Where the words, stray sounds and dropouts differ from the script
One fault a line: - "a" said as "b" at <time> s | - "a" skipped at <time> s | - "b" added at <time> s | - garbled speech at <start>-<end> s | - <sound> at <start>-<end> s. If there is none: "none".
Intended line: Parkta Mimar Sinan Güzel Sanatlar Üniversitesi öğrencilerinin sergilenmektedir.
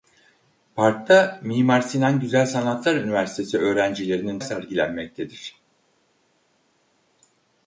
none